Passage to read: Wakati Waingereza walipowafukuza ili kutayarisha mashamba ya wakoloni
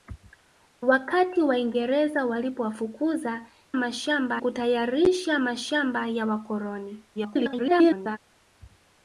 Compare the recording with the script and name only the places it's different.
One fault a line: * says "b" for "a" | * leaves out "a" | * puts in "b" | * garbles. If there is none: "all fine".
* says "mashamba" for "ili"
* garbles